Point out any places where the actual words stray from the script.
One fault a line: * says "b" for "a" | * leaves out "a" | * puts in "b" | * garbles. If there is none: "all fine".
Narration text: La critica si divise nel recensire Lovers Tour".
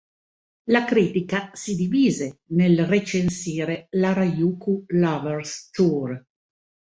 * puts in "l'"Harajuku"